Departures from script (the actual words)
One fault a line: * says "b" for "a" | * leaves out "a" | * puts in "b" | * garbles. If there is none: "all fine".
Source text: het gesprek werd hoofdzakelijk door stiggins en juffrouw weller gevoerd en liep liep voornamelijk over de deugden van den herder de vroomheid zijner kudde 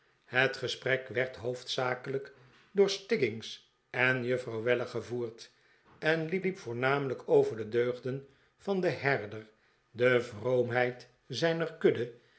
all fine